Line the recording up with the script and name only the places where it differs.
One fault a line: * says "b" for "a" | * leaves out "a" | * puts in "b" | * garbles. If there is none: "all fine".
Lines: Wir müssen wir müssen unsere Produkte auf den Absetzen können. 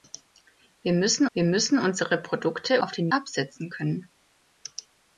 all fine